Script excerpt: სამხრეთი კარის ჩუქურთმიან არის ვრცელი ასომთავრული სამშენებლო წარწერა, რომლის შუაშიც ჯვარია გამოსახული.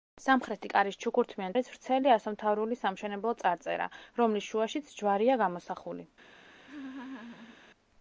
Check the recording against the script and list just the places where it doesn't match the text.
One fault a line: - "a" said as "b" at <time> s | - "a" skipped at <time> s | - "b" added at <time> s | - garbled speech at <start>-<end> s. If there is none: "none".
none